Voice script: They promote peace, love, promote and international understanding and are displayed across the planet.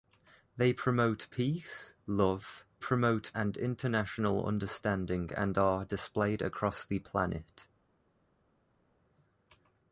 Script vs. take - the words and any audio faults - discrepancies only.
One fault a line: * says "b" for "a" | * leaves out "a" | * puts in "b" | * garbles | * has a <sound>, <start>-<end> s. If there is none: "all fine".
all fine